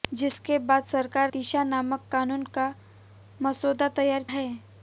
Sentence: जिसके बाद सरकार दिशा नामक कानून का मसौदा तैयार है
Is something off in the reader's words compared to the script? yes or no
no